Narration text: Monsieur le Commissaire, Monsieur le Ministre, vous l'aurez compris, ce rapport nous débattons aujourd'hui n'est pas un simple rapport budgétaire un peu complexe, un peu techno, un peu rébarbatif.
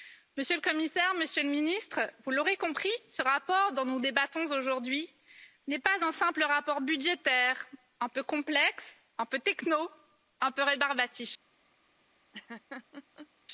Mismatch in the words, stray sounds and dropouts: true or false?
true